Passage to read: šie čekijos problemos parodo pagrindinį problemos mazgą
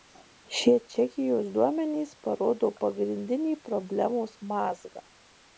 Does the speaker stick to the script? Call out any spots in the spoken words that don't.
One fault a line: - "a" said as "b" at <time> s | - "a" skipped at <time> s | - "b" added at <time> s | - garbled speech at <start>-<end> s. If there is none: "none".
- "problemos" said as "duomenys" at 1.6 s